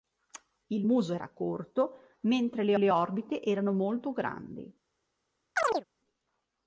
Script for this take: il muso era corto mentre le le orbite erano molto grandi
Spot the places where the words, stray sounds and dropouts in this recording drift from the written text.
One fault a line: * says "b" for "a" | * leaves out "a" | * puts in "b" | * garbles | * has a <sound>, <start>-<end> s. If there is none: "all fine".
* has a chirp, 5.6-5.8 s